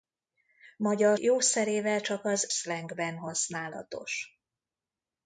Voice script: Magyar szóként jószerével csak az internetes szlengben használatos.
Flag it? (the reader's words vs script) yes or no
yes